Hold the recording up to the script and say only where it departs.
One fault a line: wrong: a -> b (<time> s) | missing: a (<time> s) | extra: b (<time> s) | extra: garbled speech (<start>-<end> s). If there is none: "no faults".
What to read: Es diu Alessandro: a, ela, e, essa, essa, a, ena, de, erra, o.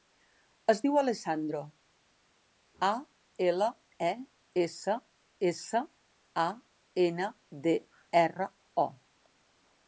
no faults